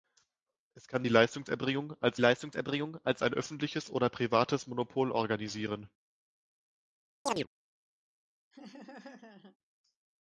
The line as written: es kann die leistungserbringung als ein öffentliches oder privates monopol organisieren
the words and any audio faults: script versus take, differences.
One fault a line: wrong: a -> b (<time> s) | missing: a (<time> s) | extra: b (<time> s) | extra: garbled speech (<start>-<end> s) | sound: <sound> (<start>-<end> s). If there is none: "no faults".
extra: leistungserbringung als (2.2 s)
sound: chirp (7.3-7.5 s)
sound: laugh (8.5-9.6 s)